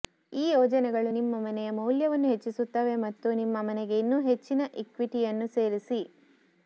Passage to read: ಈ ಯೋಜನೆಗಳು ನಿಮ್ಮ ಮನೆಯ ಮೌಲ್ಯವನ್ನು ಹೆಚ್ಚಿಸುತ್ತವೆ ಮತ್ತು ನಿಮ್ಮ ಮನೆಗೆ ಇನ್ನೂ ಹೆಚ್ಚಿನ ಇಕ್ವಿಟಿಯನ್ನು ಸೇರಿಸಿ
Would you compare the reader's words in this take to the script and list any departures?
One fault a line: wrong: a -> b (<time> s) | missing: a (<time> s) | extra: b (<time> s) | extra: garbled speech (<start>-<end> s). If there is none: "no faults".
no faults